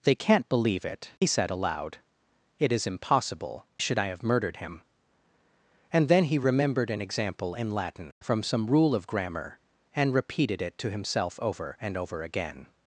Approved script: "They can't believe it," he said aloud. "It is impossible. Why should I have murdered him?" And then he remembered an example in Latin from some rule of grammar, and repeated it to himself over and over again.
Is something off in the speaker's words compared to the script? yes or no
yes